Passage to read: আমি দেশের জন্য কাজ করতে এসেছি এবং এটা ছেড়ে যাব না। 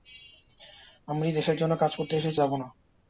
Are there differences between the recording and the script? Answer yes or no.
yes